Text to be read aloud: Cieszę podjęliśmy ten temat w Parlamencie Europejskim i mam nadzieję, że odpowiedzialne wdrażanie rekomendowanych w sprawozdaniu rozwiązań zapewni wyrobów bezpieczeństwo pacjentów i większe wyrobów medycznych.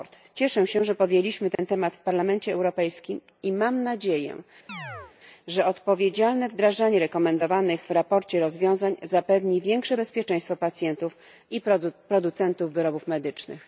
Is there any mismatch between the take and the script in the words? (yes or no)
yes